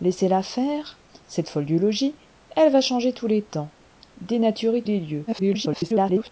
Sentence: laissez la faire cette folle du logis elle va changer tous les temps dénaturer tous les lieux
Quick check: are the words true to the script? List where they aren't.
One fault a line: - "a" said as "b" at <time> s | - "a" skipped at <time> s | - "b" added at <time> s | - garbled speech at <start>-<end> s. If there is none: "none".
- "tous" skipped at 4.8 s
- garbled speech at 5.3-6.3 s